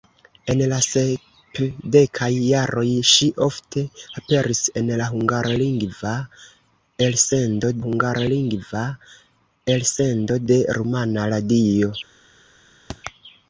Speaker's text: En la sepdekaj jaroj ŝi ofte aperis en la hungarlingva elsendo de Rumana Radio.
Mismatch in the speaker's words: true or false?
true